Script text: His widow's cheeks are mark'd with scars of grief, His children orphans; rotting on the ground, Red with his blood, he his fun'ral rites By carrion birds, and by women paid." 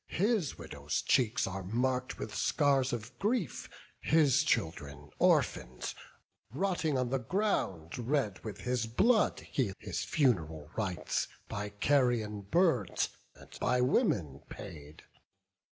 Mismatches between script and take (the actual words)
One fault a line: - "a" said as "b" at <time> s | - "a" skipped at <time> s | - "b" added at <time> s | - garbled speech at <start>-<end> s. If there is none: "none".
none